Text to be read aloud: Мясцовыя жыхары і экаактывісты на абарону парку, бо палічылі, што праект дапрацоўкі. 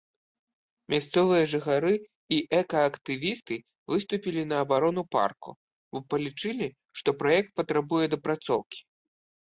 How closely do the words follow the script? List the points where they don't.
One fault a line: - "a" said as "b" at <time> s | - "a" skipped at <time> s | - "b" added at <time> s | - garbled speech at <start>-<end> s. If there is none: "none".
- "выступілі" added at 3.9 s
- "патрабуе" added at 7.6 s